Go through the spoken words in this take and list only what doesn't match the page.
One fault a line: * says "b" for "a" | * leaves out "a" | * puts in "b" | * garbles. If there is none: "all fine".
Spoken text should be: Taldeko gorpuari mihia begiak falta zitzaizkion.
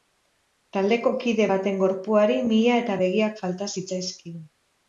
* puts in "kide baten"
* puts in "eta"